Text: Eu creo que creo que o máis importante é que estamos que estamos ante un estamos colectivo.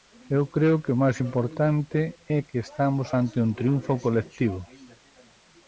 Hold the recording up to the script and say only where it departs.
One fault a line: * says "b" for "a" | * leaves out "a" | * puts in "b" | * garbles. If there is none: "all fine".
* leaves out "creo que"
* leaves out "que estamos"
* says "triunfo" for "estamos"